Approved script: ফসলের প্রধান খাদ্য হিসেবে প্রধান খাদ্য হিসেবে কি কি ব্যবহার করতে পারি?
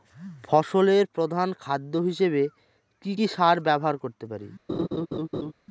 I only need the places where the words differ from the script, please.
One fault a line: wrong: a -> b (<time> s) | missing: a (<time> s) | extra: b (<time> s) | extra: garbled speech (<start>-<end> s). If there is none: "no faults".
wrong: প্রধান খাদ্য হিসেবে -> কি (3.0 s)
wrong: কি -> সার (3.3 s)